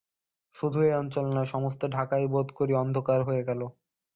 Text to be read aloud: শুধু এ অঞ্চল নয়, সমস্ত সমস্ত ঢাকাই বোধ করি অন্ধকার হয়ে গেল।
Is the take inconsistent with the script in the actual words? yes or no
yes